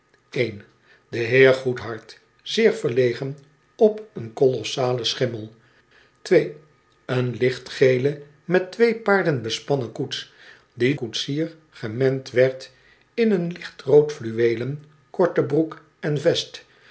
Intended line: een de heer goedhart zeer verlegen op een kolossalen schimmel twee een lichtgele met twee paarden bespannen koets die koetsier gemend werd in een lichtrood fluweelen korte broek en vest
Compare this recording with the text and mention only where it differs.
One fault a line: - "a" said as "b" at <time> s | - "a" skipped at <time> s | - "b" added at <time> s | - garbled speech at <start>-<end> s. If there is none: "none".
none